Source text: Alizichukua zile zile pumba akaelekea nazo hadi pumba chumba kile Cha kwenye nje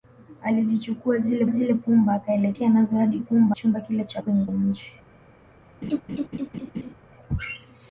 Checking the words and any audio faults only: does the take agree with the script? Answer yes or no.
no